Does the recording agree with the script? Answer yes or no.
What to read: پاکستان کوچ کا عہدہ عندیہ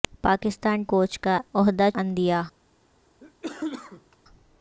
yes